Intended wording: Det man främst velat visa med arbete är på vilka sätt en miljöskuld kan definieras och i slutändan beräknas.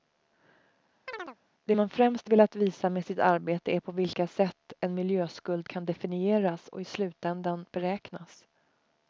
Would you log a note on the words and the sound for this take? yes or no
yes